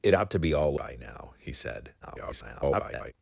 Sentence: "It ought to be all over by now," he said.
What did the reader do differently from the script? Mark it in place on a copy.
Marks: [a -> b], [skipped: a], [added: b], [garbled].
"It ought to be all [skipped: over] by now," he said. [garbled]